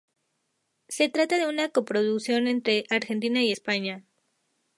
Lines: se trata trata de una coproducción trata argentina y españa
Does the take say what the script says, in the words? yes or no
no